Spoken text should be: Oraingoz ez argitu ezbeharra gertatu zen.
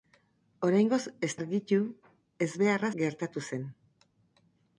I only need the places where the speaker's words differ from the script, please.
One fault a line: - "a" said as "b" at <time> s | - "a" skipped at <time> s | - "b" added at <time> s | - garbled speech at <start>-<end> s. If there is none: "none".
none